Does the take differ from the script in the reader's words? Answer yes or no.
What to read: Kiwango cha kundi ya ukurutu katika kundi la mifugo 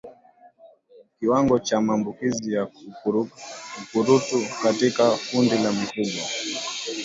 yes